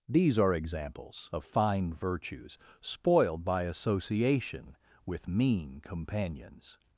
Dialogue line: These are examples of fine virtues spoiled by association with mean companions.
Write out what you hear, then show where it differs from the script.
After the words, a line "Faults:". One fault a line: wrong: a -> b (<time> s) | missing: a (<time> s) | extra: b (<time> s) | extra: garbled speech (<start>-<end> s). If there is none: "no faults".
These are examples of fine virtues spoiled by association with mean companions.
Faults:
no faults